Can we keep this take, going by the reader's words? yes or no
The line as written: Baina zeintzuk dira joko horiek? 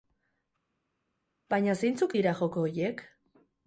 yes